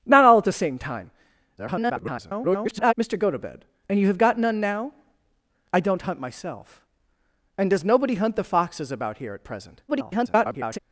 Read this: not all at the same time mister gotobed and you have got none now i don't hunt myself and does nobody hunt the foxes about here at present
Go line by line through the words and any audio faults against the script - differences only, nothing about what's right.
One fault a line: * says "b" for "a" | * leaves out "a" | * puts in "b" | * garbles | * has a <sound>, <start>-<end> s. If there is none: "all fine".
* garbles
* garbles